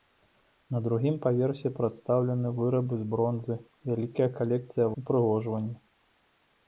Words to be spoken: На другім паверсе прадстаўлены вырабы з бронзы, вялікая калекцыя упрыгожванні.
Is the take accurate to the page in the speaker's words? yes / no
yes